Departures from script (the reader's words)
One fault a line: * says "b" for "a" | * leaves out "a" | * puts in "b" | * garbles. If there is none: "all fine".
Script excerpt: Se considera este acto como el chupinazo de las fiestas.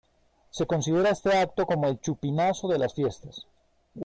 all fine